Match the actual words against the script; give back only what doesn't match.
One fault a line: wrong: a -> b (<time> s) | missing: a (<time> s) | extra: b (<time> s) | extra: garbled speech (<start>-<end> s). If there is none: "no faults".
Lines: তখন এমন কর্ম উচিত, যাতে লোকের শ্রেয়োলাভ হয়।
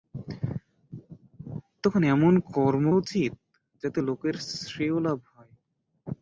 no faults